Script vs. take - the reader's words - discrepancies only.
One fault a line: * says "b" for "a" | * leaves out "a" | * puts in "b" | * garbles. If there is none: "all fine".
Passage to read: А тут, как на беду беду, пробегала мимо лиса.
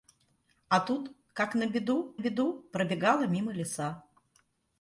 all fine